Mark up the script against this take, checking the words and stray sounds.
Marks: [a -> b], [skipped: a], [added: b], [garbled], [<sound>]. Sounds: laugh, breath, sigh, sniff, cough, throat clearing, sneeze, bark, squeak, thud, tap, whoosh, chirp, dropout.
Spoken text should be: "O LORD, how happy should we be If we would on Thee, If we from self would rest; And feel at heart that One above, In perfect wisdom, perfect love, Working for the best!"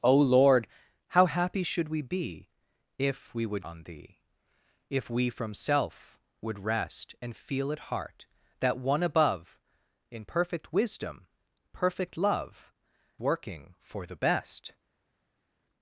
"O LORD, how happy should we be If we would on Thee, If we from self would rest; And feel at heart that One above, In perfect wisdom, perfect love, Working for the best!"